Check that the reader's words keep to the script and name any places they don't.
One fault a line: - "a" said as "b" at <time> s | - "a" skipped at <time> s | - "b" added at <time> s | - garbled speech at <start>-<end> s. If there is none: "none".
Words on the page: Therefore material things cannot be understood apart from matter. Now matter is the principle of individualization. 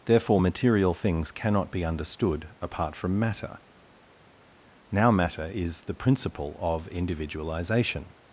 none